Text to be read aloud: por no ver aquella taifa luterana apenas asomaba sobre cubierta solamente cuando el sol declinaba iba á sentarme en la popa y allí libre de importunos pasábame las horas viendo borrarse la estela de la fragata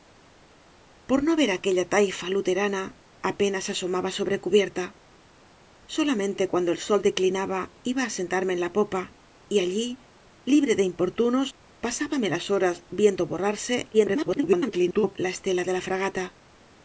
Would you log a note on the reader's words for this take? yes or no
yes